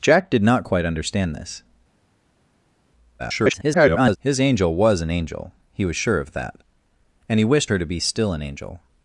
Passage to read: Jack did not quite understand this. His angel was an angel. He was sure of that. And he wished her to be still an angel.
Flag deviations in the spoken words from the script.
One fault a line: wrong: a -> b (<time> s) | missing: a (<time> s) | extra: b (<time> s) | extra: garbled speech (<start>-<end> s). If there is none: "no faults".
extra: garbled speech (3.2-4.2 s)